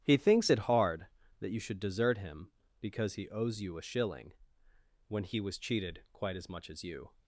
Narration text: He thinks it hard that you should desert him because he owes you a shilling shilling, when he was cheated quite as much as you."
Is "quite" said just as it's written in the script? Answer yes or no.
yes